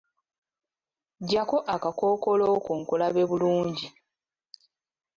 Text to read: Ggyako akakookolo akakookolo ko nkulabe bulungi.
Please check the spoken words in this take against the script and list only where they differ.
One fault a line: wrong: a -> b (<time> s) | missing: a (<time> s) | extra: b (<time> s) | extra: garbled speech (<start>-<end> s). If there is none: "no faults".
missing: akakookolo (2.5 s)